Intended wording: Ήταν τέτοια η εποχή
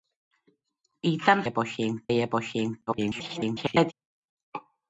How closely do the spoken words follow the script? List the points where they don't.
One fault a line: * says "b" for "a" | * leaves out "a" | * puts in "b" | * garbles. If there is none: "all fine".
* says "εποχή" for "τέτοια"
* garbles